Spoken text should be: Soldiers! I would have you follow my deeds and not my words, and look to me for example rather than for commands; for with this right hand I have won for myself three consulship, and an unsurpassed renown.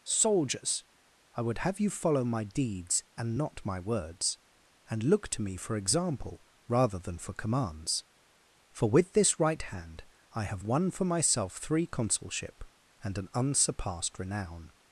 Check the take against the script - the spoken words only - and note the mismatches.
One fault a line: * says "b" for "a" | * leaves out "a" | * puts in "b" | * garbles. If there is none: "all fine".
all fine